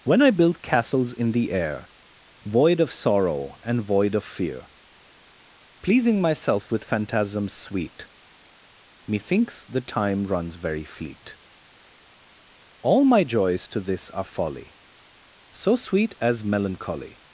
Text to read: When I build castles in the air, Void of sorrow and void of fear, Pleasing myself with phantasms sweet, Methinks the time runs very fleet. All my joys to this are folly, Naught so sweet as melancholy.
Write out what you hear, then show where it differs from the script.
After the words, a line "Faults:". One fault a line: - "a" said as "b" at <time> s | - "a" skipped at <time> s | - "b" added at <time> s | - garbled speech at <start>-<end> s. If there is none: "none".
When I build castles in the air, Void of sorrow and void of fear, Pleasing myself with phantasms sweet, Methinks the time runs very fleet. All my joys to this are folly, so sweet as melancholy.
Faults:
- "Naught" skipped at 14.8 s